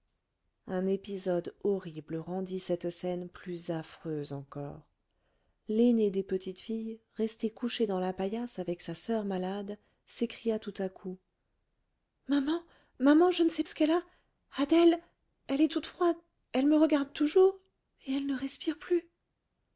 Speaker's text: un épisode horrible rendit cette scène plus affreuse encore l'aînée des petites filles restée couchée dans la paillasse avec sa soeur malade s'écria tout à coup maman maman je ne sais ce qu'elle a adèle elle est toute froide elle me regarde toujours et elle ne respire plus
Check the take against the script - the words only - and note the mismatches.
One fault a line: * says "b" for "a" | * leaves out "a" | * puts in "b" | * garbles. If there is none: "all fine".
all fine